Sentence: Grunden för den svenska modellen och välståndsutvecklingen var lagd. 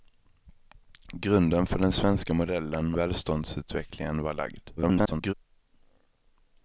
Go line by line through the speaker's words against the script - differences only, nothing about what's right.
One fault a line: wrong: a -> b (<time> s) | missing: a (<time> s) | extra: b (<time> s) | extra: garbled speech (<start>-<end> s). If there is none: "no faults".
missing: och (3.0 s)
extra: garbled speech (4.8-5.3 s)